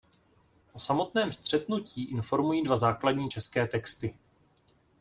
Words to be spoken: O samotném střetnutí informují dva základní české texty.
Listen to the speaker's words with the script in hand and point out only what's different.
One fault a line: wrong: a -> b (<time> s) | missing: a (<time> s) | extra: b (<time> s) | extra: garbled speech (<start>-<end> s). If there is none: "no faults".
no faults